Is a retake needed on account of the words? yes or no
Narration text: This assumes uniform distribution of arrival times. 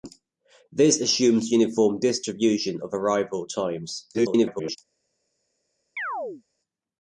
yes